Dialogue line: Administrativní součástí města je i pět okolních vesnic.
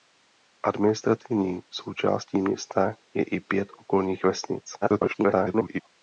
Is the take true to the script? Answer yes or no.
no